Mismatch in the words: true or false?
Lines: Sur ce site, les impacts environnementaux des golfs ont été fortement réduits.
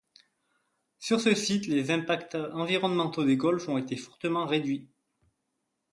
false